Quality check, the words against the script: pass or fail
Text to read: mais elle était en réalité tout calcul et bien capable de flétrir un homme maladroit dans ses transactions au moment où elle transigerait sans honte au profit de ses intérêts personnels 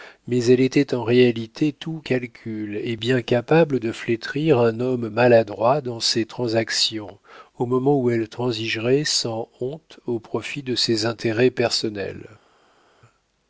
pass